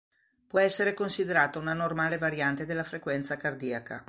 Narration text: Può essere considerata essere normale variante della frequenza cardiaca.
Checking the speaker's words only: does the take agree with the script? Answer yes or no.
no